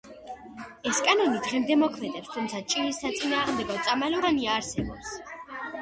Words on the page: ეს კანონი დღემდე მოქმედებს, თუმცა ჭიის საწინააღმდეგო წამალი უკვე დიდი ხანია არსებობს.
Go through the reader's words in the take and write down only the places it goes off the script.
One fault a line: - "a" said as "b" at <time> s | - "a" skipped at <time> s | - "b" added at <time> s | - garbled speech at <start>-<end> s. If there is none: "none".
- "უკვე დიდი" skipped at 4.2 s